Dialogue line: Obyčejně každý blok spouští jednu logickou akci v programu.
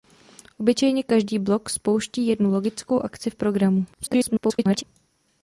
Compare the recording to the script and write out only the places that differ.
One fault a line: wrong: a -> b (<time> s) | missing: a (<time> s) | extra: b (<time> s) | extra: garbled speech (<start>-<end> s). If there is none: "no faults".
extra: garbled speech (3.9-4.8 s)